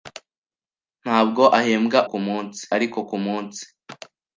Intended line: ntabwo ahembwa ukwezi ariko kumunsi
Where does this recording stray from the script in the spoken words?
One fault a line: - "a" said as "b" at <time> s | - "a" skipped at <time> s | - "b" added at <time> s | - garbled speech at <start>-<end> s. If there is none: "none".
- "ukwezi" said as "kumunsi" at 2.1 s